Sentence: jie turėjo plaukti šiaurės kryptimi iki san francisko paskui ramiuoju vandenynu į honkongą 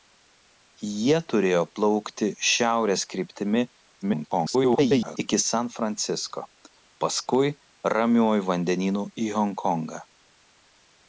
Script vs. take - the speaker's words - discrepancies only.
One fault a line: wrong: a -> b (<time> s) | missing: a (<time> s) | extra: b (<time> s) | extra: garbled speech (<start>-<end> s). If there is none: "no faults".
extra: garbled speech (4.0-5.2 s)